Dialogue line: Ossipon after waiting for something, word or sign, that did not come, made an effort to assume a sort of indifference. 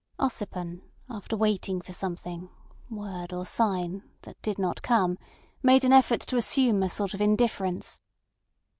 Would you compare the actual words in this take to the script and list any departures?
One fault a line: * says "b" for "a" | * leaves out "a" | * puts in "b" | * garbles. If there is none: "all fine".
all fine